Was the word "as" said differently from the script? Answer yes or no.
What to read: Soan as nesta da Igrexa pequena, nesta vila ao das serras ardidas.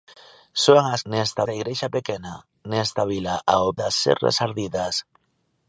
no